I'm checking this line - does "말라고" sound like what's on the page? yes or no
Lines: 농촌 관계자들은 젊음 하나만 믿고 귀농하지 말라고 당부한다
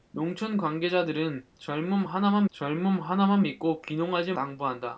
no